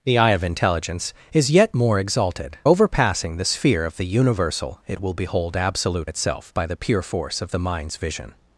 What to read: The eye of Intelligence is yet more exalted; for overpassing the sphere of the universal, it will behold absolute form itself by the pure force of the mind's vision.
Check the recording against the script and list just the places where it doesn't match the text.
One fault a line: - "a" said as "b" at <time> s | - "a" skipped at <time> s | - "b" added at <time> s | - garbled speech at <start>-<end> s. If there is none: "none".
- "for" skipped at 2.6 s
- "form" skipped at 6.1 s